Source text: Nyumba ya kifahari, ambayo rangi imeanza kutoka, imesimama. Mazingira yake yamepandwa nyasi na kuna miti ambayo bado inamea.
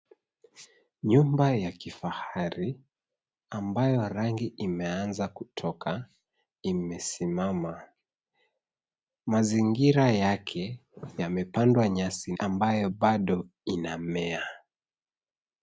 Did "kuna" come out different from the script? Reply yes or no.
yes